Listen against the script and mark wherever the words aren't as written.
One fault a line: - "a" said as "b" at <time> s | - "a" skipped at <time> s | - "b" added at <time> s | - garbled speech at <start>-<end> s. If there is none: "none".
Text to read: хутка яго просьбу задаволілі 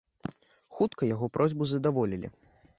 none